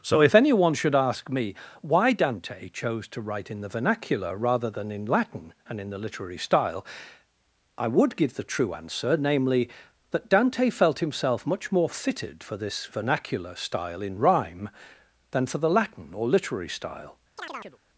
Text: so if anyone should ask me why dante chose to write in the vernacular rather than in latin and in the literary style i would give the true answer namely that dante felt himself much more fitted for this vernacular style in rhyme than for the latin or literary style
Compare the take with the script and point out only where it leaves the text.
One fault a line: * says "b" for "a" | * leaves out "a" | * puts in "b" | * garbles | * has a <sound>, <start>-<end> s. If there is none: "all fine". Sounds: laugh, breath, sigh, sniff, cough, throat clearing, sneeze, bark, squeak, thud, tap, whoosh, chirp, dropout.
* has a chirp, 17.4-17.8 s